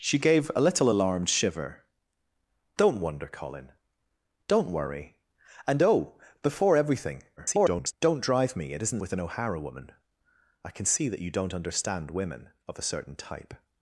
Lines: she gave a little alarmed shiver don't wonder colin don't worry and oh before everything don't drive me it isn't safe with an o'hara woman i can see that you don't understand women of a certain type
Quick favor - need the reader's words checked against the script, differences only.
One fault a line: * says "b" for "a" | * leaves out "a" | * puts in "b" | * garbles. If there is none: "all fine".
* garbles
* leaves out "safe"